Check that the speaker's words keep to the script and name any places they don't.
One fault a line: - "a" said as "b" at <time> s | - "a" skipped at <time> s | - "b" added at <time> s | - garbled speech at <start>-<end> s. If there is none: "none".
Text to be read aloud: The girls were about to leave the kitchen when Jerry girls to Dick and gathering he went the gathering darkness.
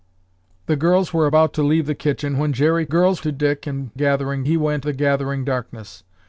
none